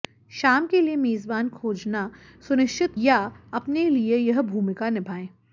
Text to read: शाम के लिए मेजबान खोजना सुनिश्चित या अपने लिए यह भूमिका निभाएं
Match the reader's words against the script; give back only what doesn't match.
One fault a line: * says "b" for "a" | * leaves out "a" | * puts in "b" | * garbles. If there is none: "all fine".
all fine